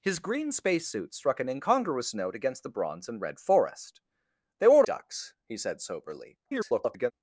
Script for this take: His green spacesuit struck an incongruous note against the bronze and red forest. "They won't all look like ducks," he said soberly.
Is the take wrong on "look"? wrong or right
wrong